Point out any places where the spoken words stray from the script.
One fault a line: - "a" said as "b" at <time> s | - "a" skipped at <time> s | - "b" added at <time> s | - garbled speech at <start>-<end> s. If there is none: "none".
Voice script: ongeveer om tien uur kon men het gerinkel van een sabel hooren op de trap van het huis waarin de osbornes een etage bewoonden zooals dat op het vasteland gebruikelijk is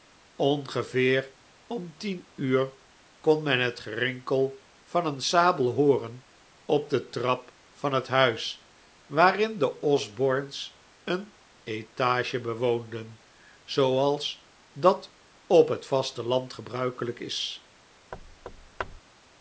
none